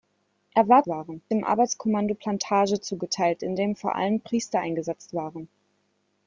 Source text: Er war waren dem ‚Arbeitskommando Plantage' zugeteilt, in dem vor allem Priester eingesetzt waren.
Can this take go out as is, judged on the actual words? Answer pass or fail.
pass